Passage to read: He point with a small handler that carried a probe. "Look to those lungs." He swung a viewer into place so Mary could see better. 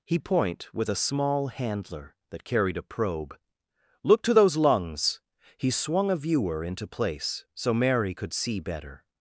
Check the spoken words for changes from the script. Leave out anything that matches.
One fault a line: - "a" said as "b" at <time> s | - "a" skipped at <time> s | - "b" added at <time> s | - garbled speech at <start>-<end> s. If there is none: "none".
none